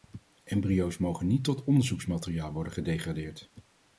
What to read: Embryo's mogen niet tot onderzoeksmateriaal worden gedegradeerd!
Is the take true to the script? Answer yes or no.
yes